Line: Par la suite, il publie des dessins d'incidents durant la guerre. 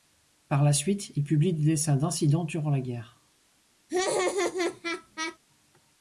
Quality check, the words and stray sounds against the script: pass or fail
fail